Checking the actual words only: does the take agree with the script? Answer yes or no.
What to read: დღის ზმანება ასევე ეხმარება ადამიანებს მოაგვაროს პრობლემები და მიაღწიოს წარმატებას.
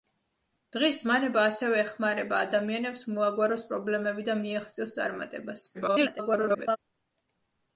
no